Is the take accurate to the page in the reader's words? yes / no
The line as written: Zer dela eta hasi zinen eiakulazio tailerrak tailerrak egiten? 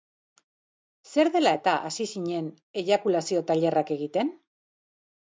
no